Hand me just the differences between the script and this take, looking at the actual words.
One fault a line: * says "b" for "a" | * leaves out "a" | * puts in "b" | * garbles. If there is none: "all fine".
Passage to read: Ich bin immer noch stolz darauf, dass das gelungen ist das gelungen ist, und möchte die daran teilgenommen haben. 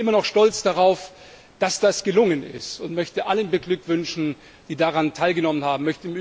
* says "und möchte alle beglückwünschen" for "das gelungen ist und möchte"